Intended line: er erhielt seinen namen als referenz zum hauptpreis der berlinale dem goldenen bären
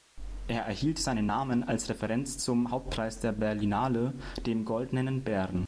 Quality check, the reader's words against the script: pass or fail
pass